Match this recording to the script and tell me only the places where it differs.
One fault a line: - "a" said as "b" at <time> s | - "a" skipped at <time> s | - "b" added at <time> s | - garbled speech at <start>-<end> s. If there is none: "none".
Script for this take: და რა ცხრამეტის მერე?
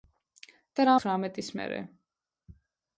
none